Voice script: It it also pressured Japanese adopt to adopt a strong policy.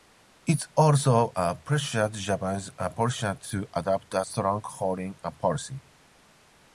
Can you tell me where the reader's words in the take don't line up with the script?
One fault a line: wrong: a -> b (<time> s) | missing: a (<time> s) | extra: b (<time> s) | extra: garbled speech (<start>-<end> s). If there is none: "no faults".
missing: it (0.6 s)
wrong: adopt -> politicians (2.7 s)
extra: foreign (4.6 s)